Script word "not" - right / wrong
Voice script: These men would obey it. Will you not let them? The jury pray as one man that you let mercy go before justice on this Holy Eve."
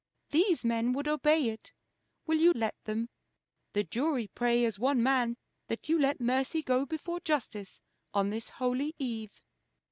wrong